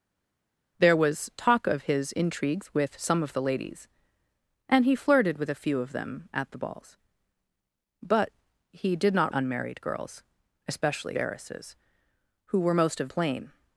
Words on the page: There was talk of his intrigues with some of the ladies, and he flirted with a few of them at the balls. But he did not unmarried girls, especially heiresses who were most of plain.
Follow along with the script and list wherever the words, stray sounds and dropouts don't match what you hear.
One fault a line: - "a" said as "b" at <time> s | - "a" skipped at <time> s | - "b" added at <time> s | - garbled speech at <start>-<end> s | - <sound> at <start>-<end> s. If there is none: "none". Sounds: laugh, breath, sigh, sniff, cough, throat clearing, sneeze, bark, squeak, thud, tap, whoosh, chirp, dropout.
none